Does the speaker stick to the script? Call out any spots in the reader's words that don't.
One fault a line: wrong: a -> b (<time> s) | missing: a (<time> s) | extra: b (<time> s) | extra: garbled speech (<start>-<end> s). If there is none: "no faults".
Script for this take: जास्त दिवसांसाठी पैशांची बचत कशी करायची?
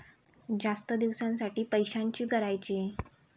missing: बचत कशी (2.2 s)